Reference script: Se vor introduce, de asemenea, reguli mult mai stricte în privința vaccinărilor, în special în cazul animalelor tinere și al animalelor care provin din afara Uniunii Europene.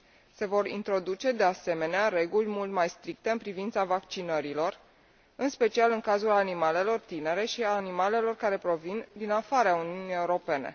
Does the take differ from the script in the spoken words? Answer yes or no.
no